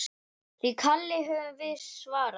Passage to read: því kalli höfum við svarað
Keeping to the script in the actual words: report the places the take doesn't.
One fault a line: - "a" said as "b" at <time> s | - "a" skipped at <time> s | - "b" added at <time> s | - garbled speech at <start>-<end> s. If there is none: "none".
none